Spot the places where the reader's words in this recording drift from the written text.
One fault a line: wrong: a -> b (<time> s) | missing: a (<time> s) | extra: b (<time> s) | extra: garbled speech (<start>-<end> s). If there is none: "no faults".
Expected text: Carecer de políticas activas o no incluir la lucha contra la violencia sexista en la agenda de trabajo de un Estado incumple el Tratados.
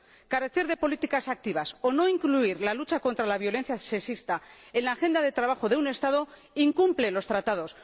wrong: el -> los (7.1 s)